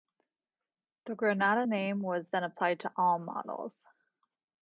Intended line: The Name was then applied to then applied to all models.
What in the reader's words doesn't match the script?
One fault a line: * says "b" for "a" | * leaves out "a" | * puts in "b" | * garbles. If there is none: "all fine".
* puts in "Granada"
* leaves out "then applied to"